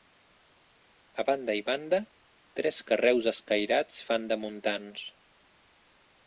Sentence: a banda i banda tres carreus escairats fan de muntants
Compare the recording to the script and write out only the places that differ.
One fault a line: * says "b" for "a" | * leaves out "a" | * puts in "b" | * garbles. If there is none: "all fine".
all fine